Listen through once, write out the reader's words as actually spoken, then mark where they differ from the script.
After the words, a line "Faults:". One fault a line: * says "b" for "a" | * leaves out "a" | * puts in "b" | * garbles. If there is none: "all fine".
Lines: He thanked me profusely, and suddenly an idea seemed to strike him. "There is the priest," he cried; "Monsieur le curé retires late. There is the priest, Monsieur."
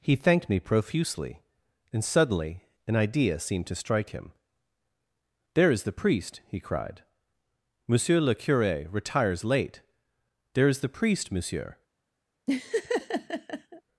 He thanked me profusely, and suddenly an idea seemed to strike him. "There is the priest," he cried; "Monsieur le curé retires late. There is the priest, Monsieur."
Faults:
all fine